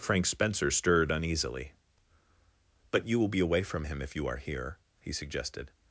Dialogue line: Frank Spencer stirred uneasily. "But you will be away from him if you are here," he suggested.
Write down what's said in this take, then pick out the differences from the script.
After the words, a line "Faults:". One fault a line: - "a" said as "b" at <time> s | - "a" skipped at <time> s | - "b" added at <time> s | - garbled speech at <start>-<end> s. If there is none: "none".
Frank Spencer stirred uneasily. "But you will be away from him if you are here," he suggested.
Faults:
none